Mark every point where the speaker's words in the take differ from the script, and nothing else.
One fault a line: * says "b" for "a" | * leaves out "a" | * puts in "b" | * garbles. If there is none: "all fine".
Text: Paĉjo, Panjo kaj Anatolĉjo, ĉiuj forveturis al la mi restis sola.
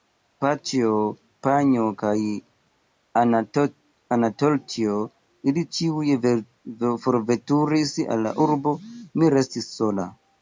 * puts in "ili"
* puts in "urbo"